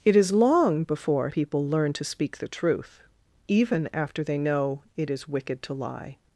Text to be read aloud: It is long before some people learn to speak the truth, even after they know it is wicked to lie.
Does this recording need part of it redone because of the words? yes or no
yes